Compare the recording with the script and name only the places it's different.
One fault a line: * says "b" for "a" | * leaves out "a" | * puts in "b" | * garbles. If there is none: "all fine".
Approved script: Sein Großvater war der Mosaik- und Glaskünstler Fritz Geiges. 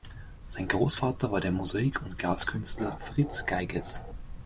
all fine